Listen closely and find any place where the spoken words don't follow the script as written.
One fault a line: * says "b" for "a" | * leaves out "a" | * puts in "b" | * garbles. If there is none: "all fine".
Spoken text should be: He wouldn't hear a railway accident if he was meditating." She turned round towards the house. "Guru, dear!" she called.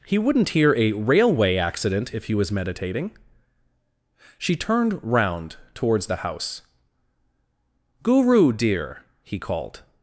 * says "he" for "she"